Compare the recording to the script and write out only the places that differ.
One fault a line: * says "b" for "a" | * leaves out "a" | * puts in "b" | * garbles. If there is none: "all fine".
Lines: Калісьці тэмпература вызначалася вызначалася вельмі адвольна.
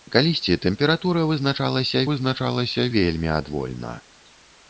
all fine